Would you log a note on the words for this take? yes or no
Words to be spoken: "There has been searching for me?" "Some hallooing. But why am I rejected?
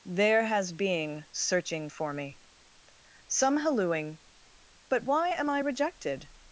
yes